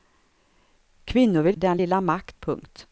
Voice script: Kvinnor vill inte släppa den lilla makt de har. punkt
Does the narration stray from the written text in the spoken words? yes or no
yes